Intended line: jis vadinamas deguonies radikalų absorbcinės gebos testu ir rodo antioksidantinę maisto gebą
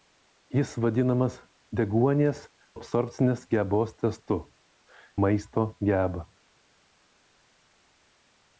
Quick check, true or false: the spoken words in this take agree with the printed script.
false